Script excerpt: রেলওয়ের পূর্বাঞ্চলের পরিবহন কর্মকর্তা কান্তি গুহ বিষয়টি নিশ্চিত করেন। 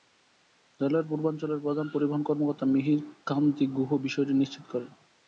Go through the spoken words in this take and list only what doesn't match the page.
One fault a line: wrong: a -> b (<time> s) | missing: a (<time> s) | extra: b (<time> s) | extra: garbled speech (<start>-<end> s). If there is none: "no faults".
extra: প্রধান (1.6 s)
extra: মিহির (2.6 s)